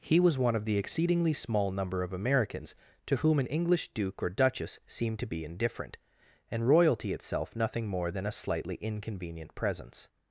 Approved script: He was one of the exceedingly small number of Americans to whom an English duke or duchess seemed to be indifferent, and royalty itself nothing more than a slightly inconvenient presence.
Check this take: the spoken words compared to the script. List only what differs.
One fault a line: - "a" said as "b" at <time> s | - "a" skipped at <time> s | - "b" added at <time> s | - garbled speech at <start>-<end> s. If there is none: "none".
none